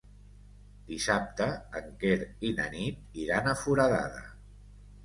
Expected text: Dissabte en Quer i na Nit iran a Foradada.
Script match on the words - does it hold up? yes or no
yes